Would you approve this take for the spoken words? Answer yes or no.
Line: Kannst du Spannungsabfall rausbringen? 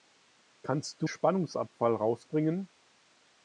yes